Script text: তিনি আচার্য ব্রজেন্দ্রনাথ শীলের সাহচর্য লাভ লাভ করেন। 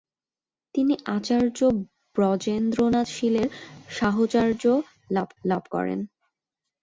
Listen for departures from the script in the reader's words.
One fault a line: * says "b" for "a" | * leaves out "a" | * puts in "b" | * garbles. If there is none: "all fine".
all fine